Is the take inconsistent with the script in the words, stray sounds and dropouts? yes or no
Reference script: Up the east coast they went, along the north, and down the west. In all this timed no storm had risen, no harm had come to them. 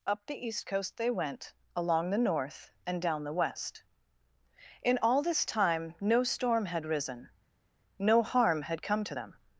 yes